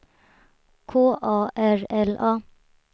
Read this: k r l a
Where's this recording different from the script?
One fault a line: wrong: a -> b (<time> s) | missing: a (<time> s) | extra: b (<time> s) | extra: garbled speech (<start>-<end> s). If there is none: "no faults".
extra: a (1.2 s)